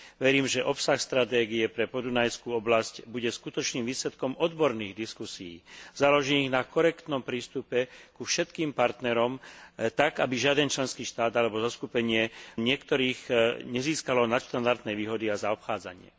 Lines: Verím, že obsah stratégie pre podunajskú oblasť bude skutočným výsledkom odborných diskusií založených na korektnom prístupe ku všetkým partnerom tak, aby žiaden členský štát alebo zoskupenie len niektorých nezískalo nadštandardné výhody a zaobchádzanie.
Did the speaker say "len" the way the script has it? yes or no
no